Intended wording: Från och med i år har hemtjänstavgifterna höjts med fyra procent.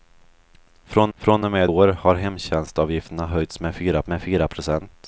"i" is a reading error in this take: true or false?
true